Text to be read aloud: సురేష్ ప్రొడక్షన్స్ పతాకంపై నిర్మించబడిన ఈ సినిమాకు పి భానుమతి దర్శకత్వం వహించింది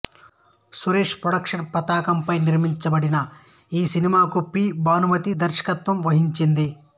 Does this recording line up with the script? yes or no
yes